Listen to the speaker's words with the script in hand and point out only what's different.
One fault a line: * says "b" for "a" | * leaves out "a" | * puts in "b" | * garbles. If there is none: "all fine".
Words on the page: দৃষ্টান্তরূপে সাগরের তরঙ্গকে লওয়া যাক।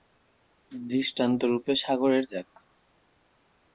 * leaves out "তরঙ্গকে লওয়া"